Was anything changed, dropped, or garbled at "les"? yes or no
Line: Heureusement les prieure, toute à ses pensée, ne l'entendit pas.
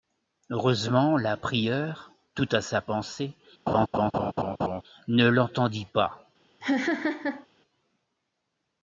yes